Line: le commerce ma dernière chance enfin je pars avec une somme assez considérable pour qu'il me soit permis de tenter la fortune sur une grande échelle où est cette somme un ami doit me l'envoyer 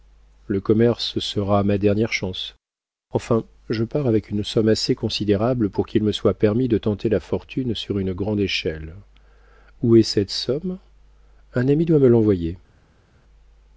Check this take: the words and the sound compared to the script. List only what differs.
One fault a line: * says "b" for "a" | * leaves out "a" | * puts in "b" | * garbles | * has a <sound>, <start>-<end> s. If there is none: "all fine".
* puts in "sera"